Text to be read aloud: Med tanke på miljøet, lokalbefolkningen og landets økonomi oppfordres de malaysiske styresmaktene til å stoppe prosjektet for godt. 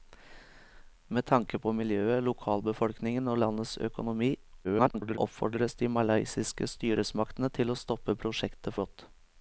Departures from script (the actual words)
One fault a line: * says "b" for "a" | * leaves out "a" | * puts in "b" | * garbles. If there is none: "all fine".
* garbles
* leaves out "for"